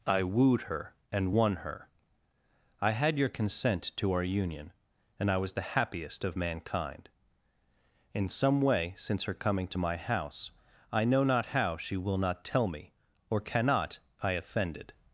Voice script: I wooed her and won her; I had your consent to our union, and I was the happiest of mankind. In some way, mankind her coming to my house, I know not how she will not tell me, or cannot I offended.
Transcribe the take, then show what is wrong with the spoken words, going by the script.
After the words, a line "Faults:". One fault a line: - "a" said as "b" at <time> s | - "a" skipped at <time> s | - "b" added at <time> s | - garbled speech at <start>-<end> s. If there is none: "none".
I wooed her and won her; I had your consent to our union, and I was the happiest of mankind. In some way, since her coming to my house, I know not how she will not tell me, or cannot I offended.
Faults:
- "mankind" said as "since" at 9.0 s